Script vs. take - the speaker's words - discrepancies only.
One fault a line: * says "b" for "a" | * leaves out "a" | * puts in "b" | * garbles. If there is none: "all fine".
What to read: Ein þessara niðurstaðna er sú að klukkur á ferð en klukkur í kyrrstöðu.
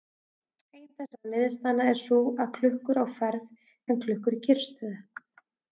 all fine